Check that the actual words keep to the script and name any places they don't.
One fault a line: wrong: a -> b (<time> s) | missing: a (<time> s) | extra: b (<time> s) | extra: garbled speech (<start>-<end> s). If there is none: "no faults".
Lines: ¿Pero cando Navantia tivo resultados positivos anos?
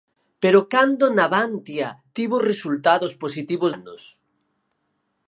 no faults